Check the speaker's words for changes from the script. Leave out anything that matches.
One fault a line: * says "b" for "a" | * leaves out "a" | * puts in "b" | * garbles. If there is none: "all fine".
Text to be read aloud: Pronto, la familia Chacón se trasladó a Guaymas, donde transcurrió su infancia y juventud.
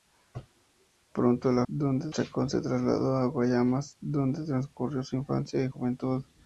* says "donde" for "familia"